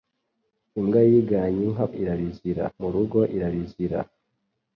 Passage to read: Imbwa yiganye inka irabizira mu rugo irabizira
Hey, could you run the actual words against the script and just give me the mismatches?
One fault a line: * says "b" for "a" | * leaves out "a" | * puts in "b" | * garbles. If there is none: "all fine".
all fine